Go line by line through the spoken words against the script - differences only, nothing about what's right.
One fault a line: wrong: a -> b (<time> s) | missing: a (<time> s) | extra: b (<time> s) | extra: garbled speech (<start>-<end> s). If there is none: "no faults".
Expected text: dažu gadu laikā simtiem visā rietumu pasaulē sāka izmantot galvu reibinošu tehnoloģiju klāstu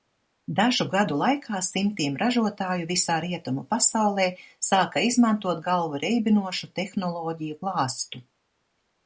extra: ražotāju (2.2 s)